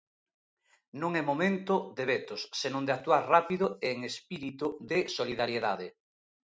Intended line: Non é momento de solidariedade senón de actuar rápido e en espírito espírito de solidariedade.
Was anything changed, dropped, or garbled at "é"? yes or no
no